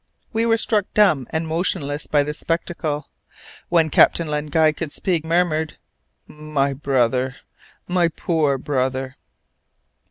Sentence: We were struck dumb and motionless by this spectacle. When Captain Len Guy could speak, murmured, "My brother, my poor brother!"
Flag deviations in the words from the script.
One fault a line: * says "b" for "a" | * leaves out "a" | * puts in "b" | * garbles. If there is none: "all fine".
all fine